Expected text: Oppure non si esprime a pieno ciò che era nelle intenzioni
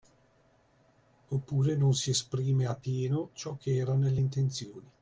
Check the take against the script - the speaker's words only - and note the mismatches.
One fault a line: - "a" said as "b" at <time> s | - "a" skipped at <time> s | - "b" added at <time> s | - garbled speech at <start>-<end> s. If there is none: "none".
none